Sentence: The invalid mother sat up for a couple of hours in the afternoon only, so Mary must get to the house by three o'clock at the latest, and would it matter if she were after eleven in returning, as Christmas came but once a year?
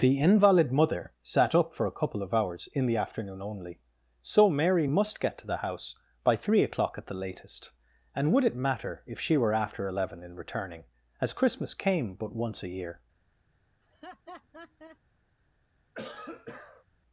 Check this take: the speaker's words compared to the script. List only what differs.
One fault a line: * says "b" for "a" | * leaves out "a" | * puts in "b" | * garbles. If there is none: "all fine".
all fine